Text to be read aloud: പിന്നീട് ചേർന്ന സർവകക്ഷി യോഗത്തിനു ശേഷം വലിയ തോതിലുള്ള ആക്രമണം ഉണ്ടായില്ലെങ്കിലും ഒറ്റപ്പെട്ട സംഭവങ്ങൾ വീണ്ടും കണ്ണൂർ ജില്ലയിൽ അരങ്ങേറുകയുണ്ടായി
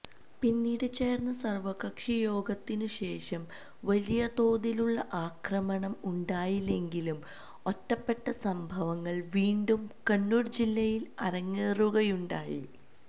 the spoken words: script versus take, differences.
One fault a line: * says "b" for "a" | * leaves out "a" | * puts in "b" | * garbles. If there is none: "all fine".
all fine